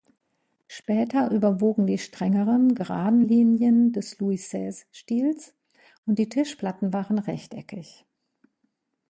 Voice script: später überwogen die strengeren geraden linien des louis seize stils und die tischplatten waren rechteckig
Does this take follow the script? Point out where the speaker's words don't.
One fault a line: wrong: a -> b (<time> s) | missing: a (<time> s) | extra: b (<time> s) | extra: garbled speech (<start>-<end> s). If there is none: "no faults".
no faults